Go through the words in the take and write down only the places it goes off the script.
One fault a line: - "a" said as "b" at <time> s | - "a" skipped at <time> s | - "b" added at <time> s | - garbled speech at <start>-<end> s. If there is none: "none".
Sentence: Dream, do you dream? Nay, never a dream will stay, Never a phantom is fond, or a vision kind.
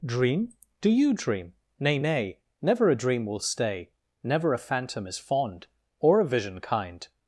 - "Nay" added at 2.0 s